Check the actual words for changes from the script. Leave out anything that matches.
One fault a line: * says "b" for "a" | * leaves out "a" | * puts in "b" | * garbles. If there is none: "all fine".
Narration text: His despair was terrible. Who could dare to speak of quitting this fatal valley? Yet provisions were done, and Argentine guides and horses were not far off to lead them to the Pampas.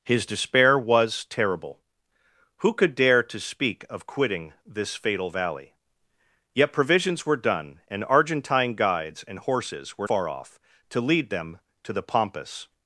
* leaves out "not"